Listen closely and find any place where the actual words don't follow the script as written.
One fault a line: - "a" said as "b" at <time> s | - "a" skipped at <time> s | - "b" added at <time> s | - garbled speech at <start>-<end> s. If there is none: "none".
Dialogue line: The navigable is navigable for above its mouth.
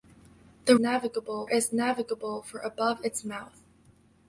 none